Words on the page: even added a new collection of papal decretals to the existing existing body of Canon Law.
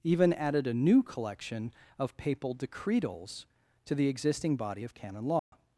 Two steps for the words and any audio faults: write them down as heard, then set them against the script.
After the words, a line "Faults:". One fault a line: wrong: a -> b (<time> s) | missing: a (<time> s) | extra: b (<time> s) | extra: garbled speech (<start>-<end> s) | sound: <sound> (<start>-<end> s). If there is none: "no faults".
even added a new collection of papal decretals to the existing body of Canon Law.
Faults:
missing: existing (4.6 s)
sound: dropout (5.4-5.5 s)